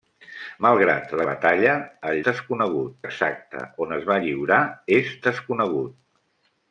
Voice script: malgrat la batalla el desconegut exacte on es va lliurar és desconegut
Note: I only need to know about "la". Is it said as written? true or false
true